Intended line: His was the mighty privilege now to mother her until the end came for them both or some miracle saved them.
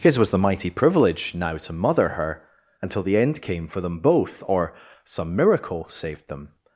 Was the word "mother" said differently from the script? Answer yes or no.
no